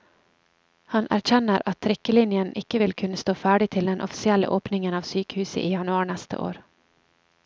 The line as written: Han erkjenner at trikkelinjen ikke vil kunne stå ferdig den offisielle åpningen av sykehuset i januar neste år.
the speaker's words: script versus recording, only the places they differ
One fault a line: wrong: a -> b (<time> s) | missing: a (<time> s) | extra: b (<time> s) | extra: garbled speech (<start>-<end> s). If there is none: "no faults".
extra: til (3.7 s)